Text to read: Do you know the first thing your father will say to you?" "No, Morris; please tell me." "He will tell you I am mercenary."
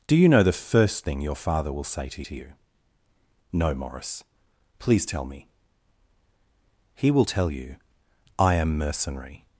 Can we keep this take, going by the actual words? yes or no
no